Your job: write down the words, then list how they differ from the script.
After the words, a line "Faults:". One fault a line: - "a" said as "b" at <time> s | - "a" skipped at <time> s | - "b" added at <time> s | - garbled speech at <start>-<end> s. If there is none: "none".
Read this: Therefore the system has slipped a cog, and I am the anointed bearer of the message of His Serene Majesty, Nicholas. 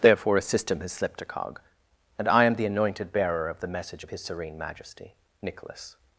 Therefore a system has slipped a cog, and I am the anointed bearer of the message of His Serene Majesty, Nicholas.
Faults:
- "the" said as "a" at 0.4 s